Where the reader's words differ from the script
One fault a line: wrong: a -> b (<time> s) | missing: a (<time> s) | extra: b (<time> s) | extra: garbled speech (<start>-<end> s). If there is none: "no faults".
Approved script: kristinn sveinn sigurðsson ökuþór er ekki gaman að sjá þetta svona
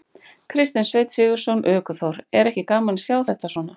no faults